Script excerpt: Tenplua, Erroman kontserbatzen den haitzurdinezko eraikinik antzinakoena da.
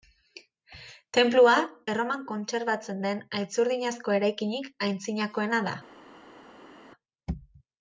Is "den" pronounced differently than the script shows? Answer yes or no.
no